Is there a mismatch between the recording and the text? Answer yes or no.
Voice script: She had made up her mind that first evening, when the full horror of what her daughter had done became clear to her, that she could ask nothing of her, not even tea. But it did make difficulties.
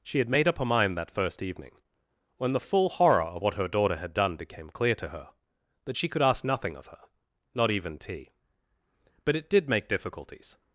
no